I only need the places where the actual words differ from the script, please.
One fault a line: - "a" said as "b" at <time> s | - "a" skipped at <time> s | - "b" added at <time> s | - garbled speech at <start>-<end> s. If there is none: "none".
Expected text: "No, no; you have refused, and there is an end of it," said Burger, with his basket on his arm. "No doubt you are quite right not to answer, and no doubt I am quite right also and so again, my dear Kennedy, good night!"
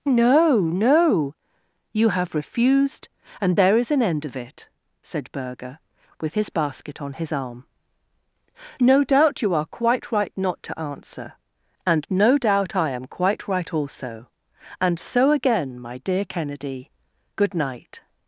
none